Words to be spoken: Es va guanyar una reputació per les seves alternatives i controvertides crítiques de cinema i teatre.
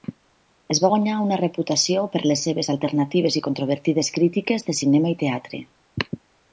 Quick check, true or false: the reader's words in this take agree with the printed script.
true